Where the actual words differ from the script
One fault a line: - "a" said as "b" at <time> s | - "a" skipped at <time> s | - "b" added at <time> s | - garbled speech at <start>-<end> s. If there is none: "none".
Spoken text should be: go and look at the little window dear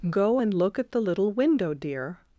none